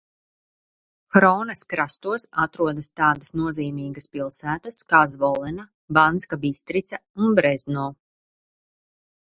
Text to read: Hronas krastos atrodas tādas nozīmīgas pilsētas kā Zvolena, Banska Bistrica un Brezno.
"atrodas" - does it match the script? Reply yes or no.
yes